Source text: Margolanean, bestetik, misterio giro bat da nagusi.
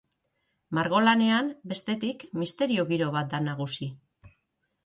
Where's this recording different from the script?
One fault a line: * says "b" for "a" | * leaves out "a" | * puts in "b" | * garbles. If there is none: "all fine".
all fine